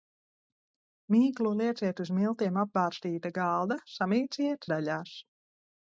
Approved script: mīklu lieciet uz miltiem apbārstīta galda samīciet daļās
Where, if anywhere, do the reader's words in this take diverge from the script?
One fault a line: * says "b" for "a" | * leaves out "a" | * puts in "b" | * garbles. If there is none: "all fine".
all fine